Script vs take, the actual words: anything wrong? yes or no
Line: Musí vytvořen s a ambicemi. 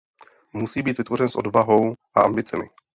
yes